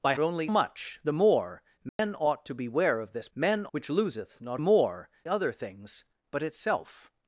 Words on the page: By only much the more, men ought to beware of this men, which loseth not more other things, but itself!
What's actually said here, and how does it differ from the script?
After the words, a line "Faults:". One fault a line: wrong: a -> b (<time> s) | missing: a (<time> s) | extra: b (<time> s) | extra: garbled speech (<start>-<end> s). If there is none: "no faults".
By only much the more, men ought to beware of this men, which loseth not more other things, but itself!
Faults:
no faults